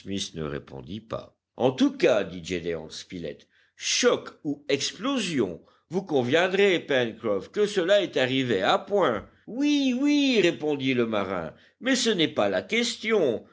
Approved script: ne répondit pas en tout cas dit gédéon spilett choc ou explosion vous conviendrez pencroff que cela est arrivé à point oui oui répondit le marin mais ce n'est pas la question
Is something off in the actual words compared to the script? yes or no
no